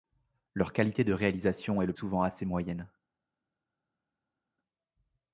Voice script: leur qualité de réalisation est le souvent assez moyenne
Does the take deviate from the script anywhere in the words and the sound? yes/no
no